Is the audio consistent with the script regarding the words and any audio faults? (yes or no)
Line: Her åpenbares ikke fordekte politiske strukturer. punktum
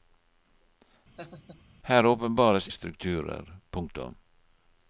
no